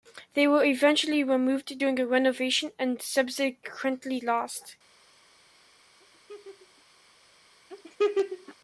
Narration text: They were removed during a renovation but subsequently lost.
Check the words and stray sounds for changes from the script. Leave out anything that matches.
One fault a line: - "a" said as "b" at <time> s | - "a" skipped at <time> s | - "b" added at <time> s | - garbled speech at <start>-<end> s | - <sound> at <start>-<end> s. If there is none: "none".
- "eventually" added at 0.6 s
- "but" said as "and" at 2.8 s
- laugh at 6.0-6.8 s
- laugh at 7.7-8.5 s